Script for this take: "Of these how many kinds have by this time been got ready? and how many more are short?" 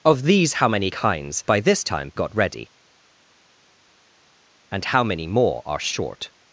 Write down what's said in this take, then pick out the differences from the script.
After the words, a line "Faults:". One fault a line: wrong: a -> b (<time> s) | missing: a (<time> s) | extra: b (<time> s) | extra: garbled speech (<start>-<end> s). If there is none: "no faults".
"Of these how many kinds by this time got ready? and how many more are short?"
Faults:
missing: have (1.4 s)
missing: been (2.1 s)